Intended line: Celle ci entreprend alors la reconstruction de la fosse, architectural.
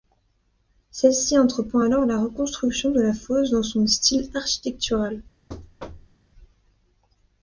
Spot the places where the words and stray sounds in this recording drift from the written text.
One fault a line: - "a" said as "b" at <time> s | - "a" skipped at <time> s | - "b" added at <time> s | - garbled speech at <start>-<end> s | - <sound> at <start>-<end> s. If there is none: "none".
- "dans son style" added at 3.5 s
- thud at 5.5-6.2 s